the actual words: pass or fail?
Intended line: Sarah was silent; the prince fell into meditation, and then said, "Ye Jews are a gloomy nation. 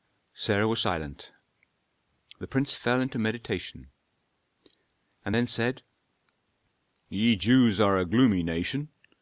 pass